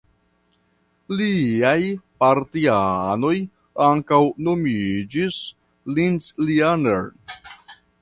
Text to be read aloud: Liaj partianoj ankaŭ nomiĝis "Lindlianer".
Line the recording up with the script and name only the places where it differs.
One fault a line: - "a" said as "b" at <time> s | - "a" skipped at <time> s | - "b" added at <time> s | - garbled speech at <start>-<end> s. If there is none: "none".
none